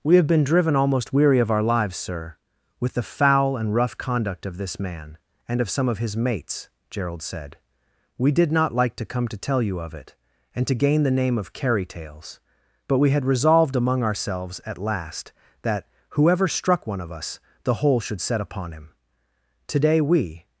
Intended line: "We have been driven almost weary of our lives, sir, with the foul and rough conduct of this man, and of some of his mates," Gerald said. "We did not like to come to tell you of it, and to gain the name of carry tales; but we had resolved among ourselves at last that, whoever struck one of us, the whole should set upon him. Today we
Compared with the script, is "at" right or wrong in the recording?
right